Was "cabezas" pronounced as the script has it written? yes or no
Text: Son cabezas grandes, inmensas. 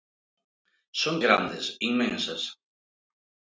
no